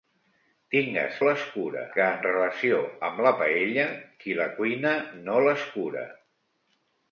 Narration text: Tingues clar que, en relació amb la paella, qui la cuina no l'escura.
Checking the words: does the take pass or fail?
fail